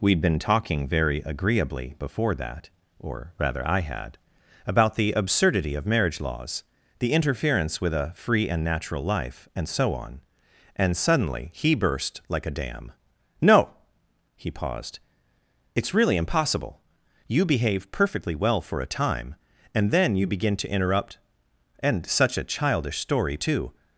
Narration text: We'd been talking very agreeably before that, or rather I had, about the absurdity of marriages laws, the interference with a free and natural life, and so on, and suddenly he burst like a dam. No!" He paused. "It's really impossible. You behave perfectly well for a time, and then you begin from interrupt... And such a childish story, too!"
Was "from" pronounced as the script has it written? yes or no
no